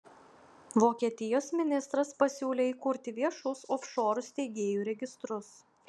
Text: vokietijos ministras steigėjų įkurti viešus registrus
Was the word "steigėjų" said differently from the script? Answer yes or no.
yes